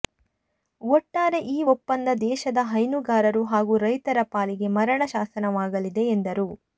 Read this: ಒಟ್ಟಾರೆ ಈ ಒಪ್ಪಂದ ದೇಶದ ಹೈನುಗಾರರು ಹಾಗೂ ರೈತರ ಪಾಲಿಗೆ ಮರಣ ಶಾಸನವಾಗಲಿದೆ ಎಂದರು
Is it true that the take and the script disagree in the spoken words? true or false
false